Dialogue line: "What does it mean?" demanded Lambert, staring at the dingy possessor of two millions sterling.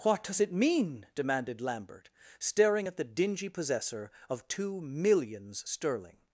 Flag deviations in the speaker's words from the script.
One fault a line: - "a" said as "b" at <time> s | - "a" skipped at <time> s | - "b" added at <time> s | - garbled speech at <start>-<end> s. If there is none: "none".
none